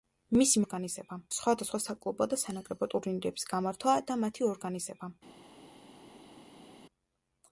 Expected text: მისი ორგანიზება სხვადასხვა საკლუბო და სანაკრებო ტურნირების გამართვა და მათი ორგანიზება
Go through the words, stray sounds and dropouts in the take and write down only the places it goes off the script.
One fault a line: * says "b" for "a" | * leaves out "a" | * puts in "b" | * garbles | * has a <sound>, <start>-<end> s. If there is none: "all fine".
all fine